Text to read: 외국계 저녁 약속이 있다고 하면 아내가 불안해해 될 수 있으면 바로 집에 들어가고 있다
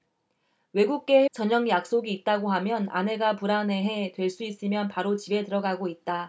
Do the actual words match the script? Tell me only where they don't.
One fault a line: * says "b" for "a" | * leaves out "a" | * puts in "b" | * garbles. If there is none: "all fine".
all fine